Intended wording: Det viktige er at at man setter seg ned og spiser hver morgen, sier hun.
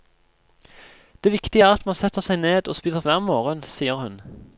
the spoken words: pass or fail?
pass